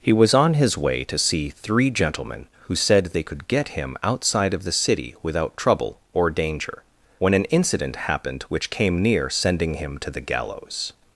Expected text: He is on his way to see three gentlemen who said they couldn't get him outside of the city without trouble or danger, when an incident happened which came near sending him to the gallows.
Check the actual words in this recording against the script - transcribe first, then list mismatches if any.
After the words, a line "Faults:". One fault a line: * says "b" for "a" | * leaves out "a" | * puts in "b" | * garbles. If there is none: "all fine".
He was on his way to see three gentlemen who said they could get him outside of the city without trouble or danger, when an incident happened which came near sending him to the gallows.
Faults:
* says "was" for "is"
* says "could" for "couldn't"